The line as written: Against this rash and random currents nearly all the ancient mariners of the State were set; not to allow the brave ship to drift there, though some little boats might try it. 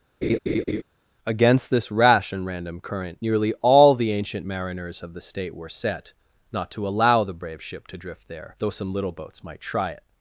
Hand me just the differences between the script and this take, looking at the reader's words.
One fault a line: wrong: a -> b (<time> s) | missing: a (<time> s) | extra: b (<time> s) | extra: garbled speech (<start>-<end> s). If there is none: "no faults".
wrong: currents -> current (2.8 s)